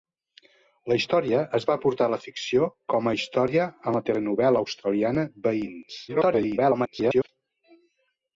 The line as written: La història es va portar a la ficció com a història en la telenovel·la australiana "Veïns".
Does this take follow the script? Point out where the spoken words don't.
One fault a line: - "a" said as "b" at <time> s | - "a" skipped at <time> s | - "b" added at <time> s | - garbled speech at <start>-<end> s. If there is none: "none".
- garbled speech at 6.1-7.3 s